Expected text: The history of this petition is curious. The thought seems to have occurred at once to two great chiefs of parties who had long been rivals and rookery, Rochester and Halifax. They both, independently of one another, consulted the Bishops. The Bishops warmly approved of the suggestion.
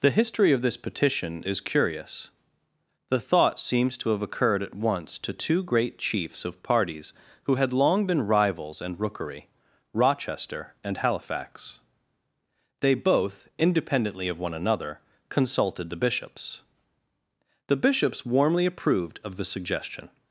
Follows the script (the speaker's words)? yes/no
yes